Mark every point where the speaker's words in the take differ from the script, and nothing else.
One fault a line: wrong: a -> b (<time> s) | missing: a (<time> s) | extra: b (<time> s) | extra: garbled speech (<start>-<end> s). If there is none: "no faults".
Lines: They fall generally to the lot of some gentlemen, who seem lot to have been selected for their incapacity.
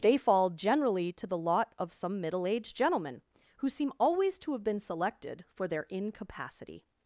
extra: middle aged (2.2 s)
wrong: lot -> always (4.0 s)